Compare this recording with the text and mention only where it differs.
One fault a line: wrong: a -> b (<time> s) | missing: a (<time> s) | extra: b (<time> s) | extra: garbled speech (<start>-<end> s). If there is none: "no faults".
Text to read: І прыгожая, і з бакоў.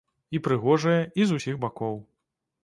extra: усіх (1.4 s)